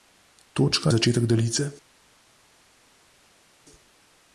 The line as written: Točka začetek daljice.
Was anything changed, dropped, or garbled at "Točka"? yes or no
no